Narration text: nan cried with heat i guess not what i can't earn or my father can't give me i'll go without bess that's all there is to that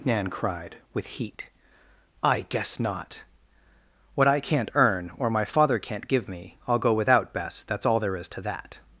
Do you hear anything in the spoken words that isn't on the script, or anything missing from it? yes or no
no